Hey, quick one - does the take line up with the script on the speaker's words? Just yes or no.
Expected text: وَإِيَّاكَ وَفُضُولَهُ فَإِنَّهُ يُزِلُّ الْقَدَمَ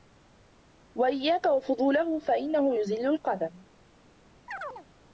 yes